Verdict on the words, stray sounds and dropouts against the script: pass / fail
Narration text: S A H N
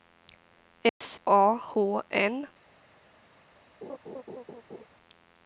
fail